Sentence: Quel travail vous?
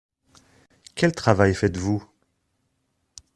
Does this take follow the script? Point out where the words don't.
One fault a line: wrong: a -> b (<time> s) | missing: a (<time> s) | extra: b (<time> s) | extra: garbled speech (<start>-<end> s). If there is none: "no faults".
extra: faites (1.5 s)